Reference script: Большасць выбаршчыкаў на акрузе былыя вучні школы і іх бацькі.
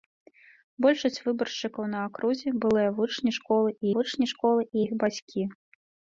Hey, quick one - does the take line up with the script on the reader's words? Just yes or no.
no